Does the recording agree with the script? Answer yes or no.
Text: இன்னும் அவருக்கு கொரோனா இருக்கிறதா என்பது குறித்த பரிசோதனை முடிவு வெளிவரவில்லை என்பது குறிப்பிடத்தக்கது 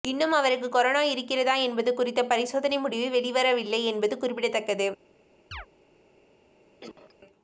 yes